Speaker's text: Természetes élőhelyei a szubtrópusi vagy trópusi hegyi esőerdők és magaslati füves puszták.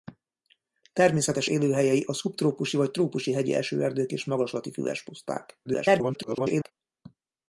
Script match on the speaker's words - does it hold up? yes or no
no